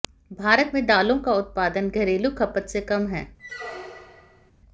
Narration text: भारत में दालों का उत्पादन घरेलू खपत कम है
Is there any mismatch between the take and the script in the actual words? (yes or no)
yes